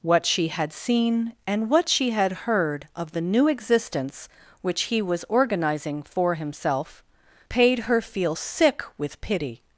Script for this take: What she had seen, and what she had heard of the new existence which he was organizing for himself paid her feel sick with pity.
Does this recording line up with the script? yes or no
yes